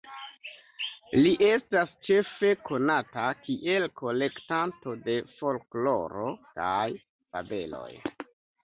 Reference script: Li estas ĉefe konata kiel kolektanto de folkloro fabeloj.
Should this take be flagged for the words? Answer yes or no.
yes